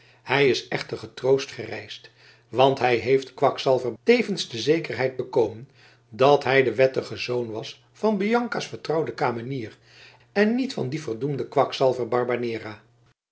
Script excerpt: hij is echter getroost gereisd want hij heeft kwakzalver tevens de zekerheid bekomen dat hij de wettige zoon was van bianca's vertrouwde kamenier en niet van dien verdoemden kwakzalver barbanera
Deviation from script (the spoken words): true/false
false